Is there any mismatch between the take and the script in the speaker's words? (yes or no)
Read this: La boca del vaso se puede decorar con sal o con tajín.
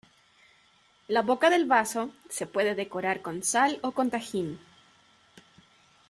no